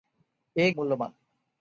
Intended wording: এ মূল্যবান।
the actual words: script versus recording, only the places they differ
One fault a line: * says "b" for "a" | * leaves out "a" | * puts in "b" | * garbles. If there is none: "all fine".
all fine